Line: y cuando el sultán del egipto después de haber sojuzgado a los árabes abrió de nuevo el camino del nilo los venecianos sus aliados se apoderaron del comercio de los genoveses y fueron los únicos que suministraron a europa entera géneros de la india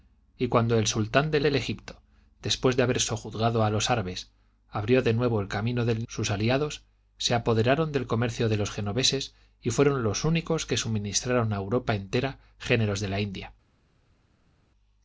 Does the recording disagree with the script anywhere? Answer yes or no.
yes